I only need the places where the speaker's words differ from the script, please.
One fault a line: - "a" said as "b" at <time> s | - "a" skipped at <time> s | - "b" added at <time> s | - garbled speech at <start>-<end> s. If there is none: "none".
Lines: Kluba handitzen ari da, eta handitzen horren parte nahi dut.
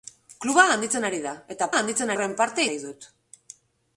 none